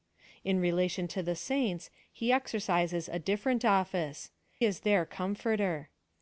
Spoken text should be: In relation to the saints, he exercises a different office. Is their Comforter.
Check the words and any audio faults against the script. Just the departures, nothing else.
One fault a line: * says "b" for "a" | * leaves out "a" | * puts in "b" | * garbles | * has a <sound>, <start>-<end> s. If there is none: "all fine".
all fine